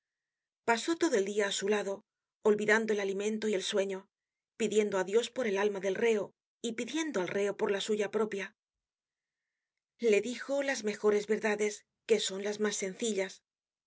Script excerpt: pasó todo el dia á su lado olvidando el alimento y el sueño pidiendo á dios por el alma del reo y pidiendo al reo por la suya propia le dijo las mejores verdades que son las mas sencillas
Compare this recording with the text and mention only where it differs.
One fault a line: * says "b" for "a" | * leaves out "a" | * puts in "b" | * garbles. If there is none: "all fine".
all fine